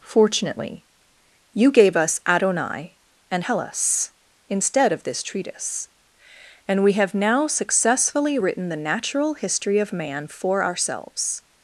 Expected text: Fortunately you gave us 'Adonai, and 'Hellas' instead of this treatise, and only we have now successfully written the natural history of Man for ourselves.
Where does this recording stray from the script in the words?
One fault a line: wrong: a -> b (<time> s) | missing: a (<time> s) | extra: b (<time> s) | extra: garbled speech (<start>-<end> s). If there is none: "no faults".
missing: only (6.8 s)